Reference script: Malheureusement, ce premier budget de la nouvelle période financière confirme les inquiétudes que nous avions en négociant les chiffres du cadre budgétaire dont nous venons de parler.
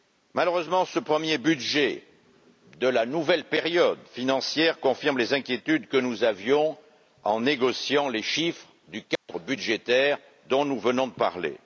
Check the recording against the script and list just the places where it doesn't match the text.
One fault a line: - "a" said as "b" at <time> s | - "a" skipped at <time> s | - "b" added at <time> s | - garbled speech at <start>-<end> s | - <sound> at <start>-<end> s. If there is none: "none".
- dropout at 9.2-9.3 s